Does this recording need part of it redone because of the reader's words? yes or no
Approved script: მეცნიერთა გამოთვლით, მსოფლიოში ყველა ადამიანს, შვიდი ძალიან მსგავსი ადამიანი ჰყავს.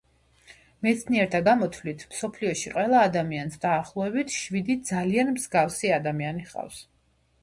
yes